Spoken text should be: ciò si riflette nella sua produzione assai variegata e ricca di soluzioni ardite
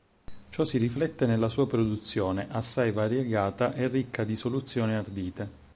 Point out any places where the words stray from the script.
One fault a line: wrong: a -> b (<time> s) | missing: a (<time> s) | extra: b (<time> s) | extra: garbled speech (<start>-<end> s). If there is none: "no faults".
no faults